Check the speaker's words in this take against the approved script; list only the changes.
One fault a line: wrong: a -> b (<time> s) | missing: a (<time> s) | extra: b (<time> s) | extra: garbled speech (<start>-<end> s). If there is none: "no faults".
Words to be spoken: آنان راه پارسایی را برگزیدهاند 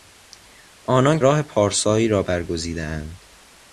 no faults